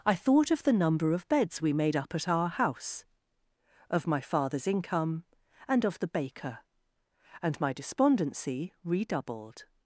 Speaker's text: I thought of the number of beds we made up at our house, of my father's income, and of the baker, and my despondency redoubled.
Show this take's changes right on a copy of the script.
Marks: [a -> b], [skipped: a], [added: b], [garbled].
I thought of the number of beds we made up at our house, of my father's income, and of the baker, and my despondency redoubled.